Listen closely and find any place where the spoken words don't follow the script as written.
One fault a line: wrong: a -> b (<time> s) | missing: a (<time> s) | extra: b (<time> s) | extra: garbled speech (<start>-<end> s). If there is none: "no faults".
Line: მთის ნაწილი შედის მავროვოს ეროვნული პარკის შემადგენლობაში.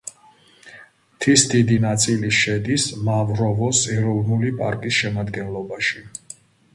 extra: დიდი (1.5 s)